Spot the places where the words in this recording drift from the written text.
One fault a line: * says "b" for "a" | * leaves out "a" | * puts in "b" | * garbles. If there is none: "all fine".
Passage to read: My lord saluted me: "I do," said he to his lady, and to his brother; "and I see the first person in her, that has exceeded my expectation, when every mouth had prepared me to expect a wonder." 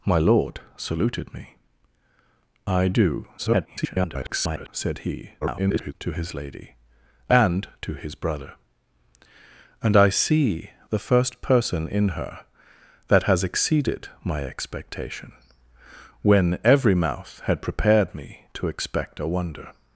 * garbles
* garbles